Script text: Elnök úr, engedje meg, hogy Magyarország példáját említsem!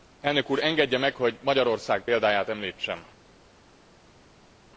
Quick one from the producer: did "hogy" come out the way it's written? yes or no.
yes